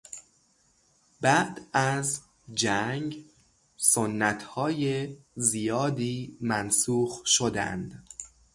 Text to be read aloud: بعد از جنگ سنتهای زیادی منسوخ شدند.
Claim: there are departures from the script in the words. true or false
false